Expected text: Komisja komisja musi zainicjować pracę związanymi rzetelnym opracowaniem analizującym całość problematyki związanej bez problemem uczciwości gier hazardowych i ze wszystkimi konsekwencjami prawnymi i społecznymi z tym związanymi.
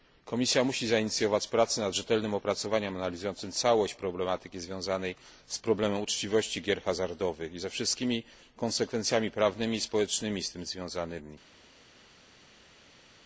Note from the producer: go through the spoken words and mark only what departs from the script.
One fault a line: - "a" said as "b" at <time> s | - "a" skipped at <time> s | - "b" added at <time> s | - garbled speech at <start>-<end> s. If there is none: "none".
- "komisja" skipped at 0.6 s
- "związanymi" said as "nad" at 1.8 s
- "bez" said as "z" at 5.5 s